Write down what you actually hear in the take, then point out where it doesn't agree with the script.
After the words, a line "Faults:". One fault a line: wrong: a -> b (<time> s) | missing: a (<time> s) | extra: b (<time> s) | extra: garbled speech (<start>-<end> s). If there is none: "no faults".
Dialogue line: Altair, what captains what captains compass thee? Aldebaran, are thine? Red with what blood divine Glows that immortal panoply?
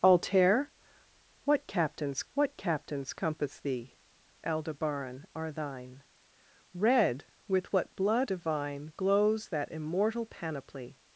Altair, what captains what captains compass thee? Aldebaran, are thine? Red with what blood divine Glows that immortal panoply?
Faults:
no faults